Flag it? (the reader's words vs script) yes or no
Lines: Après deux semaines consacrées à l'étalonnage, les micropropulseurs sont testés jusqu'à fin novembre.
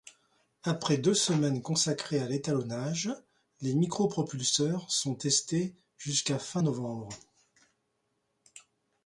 no